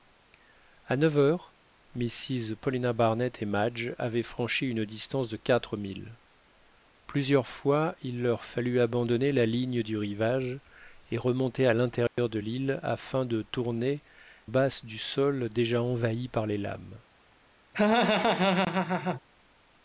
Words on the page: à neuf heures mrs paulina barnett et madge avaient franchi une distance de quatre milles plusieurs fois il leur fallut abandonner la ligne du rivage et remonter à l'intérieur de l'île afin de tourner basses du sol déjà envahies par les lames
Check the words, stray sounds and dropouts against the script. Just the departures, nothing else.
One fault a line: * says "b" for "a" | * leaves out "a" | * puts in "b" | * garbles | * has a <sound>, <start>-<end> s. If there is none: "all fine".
* has a dropout, 12.1-12.2 s
* has a laugh, 17.7-19.2 s